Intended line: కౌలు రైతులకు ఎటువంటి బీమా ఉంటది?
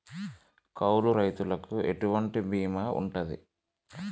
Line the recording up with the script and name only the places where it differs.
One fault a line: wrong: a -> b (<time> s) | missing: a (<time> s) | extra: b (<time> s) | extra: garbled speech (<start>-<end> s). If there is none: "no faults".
no faults